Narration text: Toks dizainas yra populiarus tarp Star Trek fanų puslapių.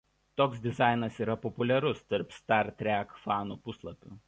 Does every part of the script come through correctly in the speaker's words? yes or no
yes